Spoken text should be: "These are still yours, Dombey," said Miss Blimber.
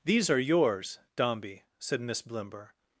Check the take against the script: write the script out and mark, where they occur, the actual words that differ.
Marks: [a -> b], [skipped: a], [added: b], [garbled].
"These are [skipped: still] yours, Dombey," said Miss Blimber.